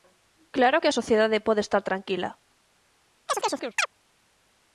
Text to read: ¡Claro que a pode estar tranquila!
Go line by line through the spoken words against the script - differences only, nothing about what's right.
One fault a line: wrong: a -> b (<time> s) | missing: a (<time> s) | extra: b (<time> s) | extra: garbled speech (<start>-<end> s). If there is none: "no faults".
extra: sociedade (1.0 s)